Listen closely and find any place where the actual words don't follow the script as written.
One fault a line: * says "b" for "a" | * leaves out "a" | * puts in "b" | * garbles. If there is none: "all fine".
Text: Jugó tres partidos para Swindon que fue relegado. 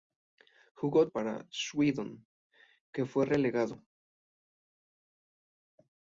* leaves out "tres partidos"